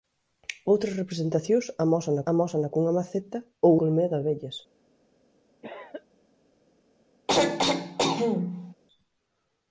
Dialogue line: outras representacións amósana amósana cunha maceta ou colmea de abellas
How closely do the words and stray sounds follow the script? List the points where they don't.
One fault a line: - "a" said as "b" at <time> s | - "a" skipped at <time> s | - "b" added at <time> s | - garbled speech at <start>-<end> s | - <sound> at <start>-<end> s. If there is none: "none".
- cough at 5.6-6.1 s
- throat clearing at 7.3-8.7 s